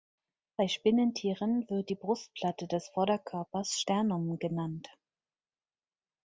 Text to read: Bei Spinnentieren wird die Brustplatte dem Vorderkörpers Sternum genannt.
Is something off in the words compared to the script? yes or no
yes